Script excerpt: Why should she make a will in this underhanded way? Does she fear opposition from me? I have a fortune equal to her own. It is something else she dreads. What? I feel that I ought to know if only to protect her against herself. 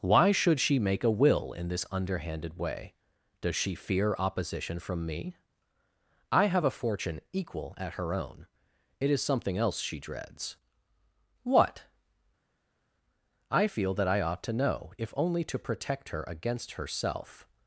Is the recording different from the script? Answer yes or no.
yes